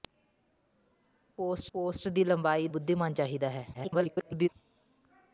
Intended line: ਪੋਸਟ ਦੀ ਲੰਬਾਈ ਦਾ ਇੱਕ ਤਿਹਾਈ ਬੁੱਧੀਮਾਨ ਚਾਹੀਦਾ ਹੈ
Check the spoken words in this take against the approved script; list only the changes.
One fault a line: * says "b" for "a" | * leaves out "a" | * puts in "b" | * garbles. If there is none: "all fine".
* puts in "ਪੋਸਟ"
* leaves out "ਦਾ ਇੱਕ ਤਿਹਾਈ"
* garbles